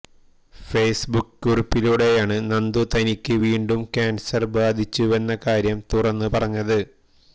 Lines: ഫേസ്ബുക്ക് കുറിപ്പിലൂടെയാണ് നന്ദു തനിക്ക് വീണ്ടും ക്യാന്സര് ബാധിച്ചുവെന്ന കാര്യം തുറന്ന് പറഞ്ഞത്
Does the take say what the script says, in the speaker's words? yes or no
yes